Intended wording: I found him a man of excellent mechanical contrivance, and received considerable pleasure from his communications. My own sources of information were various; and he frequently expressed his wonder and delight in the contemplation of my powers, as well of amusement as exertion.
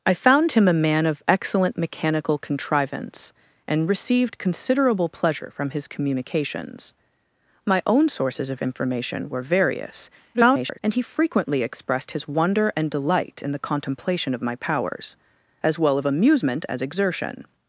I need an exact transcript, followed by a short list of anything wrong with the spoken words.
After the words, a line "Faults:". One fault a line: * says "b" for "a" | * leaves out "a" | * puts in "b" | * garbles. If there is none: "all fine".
I found him a man of excellent mechanical contrivance, and received considerable pleasure from his communications. My own sources of information were various; [garbled] and he frequently expressed his wonder and delight in the contemplation of my powers, as well of amusement as exertion.
Faults:
* garbles